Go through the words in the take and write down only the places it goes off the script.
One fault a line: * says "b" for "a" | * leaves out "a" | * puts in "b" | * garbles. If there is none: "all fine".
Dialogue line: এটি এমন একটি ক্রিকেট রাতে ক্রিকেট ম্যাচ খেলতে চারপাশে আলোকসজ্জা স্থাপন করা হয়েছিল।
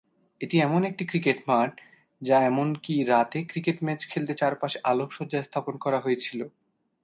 * puts in "মাঠ যা এমনকি"